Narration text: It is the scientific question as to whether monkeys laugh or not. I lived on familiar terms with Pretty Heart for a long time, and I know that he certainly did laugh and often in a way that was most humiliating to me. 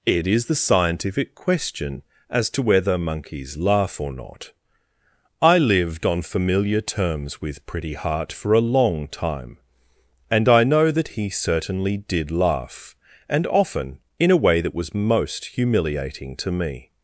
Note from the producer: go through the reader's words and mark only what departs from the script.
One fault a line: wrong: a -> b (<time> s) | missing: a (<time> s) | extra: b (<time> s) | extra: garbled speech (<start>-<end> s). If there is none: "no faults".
no faults